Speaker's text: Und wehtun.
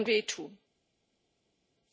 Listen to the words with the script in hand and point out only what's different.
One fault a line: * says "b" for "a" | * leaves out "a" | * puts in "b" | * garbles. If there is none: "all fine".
all fine